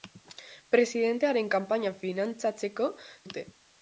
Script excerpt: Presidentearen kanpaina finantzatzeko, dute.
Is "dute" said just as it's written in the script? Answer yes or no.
yes